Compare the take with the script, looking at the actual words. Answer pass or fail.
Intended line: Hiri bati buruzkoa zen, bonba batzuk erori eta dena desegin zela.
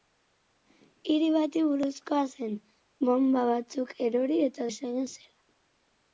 fail